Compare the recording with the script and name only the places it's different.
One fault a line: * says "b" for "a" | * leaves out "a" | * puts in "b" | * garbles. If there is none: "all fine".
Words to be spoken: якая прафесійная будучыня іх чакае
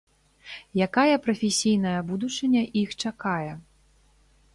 all fine